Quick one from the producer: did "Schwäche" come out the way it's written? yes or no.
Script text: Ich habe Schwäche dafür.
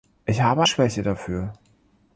yes